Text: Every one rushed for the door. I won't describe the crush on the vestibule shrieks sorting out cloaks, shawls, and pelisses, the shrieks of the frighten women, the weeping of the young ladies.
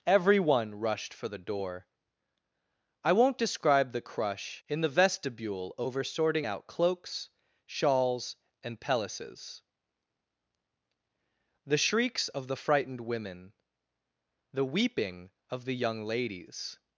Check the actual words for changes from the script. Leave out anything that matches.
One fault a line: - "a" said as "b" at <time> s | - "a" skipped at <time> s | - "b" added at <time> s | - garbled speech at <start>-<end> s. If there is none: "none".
- "on" said as "in" at 4.7 s
- "shrieks" said as "over" at 5.8 s
- "frighten" said as "frightened" at 12.6 s